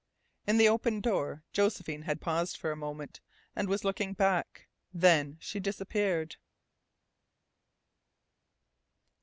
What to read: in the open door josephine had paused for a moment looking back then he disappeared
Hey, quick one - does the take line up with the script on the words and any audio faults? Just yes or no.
no